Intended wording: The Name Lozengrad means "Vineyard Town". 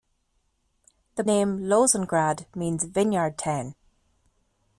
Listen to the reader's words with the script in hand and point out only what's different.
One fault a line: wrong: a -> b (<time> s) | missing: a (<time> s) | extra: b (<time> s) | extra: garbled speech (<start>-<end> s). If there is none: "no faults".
no faults